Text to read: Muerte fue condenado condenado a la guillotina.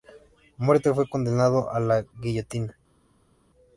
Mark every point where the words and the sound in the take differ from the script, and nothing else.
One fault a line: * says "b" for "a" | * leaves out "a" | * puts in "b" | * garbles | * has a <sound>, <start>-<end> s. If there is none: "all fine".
* leaves out "condenado"